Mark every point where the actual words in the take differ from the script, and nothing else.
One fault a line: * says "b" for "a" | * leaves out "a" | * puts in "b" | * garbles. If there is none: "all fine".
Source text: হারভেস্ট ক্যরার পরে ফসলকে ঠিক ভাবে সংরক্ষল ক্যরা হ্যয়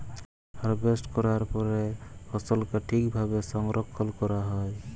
all fine